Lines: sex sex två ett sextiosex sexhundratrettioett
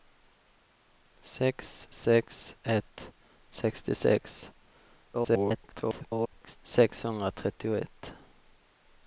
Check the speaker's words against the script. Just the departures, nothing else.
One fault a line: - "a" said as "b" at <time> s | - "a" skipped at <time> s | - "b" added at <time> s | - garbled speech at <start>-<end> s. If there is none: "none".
- "två" skipped at 2.5 s
- garbled speech at 5.1-6.6 s